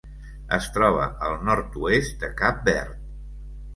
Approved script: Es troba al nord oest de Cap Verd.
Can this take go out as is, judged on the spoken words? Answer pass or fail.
pass